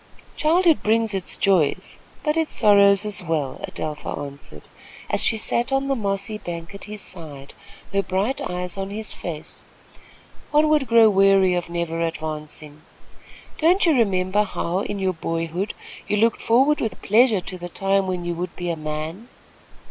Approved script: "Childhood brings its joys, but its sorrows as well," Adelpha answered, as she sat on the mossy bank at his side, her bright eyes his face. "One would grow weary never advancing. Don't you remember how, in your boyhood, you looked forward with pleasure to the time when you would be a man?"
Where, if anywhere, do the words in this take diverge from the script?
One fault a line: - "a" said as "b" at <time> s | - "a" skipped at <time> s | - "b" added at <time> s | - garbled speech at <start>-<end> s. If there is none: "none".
- "on" added at 8.8 s
- "of" added at 11.5 s